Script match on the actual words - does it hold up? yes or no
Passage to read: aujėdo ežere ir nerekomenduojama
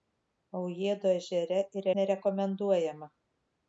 yes